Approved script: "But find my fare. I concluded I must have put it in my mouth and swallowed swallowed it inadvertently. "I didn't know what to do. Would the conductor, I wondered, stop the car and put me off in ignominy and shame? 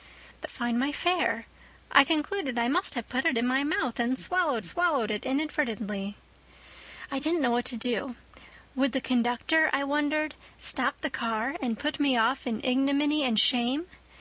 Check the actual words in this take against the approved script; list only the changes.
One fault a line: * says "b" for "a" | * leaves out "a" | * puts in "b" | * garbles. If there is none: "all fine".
all fine